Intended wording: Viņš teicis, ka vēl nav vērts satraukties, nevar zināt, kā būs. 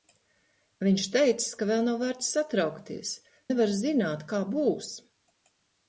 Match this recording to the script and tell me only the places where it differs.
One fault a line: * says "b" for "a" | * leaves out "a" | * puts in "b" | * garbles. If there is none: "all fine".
all fine